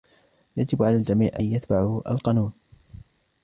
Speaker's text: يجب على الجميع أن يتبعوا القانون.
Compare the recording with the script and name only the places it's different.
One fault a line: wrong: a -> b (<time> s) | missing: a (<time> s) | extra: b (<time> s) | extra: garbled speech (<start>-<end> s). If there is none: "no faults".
no faults